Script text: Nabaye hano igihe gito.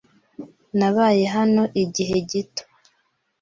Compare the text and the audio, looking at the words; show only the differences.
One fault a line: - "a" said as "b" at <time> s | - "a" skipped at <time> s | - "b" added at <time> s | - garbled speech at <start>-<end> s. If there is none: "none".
none